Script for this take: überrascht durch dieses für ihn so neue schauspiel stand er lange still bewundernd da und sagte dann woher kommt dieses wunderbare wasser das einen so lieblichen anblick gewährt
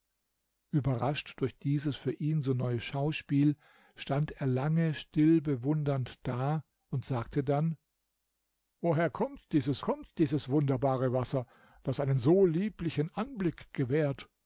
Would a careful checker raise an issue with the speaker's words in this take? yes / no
yes